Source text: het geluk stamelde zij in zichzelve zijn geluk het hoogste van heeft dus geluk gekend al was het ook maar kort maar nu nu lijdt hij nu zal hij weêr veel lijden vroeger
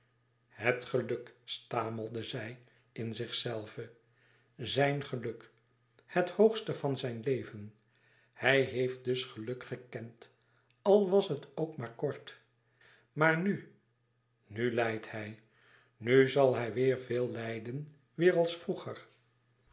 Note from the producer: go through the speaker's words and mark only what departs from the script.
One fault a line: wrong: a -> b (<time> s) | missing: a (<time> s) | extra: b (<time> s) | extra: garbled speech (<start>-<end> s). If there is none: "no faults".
extra: zijn leven hij (7.0 s)
extra: weêr als (18.2 s)